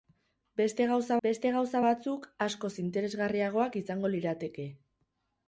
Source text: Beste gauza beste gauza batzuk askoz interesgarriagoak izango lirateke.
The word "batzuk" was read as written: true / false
true